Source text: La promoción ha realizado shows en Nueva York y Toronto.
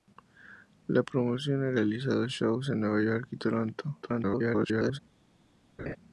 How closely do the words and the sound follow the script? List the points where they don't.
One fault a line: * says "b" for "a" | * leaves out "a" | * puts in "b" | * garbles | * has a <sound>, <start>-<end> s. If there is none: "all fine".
* garbles
* has a laugh, 5.8-6.0 s